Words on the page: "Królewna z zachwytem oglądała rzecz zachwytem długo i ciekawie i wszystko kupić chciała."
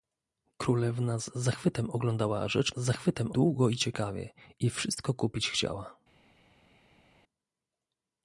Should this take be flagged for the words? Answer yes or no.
no